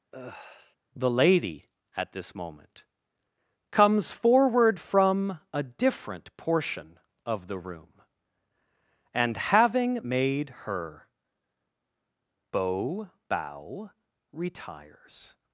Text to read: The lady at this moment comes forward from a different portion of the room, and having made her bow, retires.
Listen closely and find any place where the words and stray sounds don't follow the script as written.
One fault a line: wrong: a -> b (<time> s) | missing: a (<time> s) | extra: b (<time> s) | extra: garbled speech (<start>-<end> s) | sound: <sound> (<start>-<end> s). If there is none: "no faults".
sound: sigh (0.1-0.8 s)
extra: bow (13.3 s)